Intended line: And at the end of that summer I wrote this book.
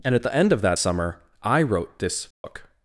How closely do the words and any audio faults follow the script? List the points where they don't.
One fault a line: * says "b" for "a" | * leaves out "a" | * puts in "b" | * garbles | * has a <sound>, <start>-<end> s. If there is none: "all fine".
* has a dropout, 2.3-2.4 s